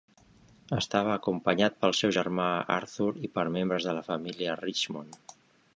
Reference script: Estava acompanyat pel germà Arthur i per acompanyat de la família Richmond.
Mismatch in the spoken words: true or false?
true